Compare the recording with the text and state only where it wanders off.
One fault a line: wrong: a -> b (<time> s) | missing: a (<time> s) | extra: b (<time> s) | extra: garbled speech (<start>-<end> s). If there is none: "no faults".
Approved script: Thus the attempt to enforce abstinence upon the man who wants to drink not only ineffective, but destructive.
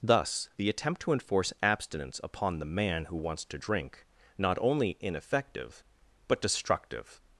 no faults